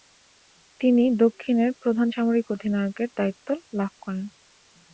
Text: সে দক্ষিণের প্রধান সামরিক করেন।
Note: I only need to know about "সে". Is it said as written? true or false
false